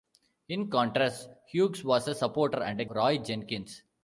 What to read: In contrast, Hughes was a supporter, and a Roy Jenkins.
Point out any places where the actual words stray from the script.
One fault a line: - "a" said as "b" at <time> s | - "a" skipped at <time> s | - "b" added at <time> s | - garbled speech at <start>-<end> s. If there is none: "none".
none